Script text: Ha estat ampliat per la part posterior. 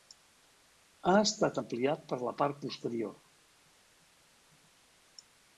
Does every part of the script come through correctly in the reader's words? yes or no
yes